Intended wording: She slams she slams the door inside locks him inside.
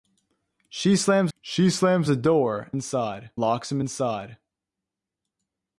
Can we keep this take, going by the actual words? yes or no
yes